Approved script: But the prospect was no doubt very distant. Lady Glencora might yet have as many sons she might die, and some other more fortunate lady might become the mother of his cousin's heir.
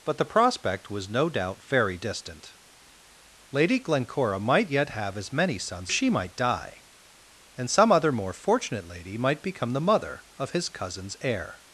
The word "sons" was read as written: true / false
true